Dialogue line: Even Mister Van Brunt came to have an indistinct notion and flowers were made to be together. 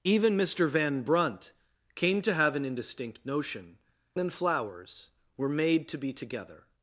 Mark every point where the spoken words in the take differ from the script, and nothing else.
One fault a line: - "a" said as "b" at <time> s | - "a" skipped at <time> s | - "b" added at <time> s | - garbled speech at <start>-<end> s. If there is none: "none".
none